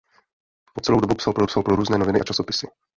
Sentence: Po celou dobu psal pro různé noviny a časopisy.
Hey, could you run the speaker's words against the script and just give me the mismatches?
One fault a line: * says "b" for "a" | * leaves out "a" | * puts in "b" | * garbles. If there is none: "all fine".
* puts in "psal pro"